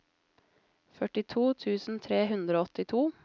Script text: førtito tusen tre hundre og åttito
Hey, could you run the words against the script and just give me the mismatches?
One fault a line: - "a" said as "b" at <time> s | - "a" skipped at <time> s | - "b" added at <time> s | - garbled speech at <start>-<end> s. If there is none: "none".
none